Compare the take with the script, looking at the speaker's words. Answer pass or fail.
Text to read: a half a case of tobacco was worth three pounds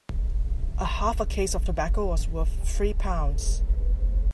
pass